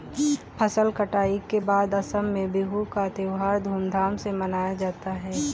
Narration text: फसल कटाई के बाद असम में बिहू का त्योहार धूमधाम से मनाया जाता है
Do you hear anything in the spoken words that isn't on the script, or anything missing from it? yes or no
no